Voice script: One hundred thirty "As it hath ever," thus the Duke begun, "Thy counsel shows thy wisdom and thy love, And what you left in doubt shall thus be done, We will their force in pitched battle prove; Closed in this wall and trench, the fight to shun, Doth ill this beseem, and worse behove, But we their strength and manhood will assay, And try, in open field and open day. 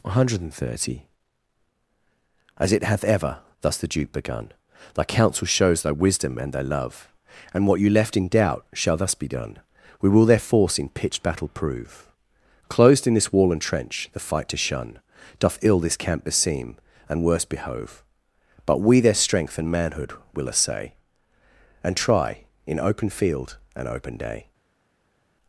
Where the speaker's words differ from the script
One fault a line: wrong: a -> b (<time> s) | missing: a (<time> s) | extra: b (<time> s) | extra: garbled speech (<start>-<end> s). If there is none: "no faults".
extra: camp (16.0 s)